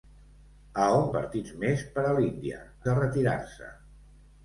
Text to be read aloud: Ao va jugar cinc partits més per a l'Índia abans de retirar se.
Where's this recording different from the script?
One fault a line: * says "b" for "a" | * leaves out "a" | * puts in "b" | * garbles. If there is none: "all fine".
* leaves out "va jugar cinc"
* leaves out "abans"